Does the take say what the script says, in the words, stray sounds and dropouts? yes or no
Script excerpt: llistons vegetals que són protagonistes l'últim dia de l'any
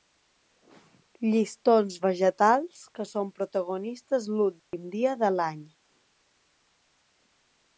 no